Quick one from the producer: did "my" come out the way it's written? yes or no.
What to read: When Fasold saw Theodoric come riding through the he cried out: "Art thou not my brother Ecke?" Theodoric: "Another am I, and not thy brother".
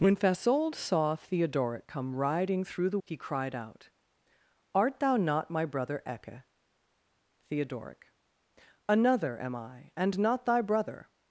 yes